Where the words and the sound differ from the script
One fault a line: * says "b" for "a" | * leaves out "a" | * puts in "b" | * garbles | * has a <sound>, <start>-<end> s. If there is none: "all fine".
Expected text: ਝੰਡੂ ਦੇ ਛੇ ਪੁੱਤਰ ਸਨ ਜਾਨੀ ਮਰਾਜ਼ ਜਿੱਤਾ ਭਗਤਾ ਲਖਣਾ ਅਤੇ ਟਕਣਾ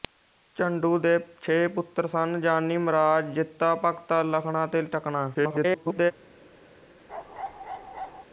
* garbles
* has a bark, 7.1-8.3 s